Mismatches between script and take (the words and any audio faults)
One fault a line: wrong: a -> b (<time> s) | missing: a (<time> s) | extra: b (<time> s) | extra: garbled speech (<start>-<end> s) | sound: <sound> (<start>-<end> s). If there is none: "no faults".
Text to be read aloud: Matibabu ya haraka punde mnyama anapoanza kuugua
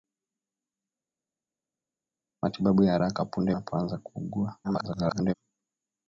missing: mnyama (3.6 s)
extra: garbled speech (4.6-5.3 s)